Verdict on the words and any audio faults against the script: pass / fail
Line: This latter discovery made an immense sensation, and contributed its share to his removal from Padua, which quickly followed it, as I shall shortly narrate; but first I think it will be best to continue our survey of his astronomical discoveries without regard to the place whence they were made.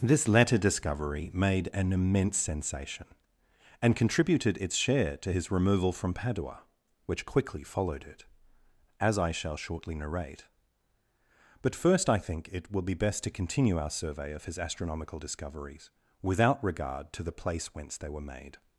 pass